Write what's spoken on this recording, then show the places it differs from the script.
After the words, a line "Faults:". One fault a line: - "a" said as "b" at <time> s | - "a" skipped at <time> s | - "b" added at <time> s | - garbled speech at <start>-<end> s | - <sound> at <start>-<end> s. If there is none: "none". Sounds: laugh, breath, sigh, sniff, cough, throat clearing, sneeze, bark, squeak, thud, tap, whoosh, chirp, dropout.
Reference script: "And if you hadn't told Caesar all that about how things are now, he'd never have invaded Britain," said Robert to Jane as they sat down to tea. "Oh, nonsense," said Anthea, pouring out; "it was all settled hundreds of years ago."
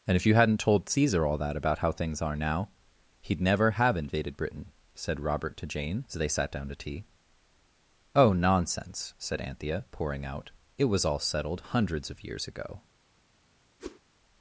"And if you hadn't told Caesar all that about how things are now, he'd never have invaded Britain," said Robert to Jane as they sat down to tea. "Oh, nonsense," said Anthea, pouring out; "it was all settled hundreds of years ago."
Faults:
- whoosh at 13.8-14.0 s